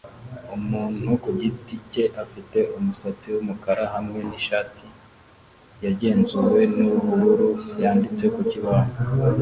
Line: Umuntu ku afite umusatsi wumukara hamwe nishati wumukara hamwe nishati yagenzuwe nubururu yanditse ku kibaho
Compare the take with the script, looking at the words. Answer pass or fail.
fail